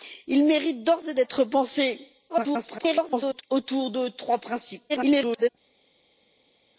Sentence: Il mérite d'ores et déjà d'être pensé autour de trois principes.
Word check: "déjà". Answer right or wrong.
wrong